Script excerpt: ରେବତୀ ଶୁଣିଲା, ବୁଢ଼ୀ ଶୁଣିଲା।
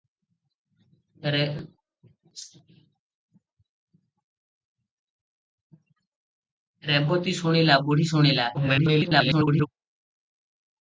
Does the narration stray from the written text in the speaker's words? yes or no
yes